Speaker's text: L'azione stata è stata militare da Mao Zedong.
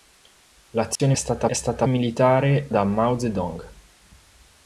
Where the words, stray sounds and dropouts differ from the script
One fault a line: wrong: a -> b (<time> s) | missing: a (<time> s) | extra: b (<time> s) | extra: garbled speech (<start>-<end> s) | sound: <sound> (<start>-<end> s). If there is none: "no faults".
sound: dropout (1.0-1.0 s)